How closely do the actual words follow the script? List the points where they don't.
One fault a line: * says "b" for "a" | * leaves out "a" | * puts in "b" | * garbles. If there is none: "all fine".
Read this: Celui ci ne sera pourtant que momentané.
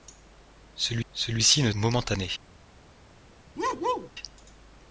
* puts in "celui"
* leaves out "sera pourtant que"